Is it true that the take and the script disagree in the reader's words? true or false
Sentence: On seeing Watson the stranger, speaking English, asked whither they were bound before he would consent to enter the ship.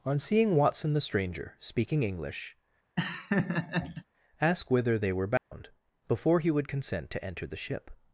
true